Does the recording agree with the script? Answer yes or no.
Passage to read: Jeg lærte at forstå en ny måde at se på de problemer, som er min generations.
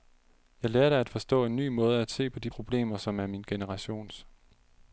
yes